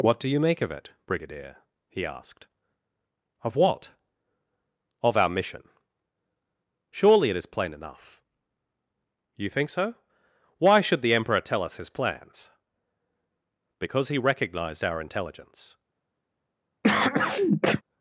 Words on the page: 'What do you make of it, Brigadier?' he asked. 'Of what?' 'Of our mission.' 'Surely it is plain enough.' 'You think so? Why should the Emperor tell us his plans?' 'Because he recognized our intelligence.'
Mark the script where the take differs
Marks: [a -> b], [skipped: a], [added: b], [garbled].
'What do you make of it, Brigadier?' he asked. 'Of what?' 'Of our mission.' 'Surely it is plain enough.' 'You think so? Why should the Emperor tell us his plans?' 'Because he recognized our intelligence.'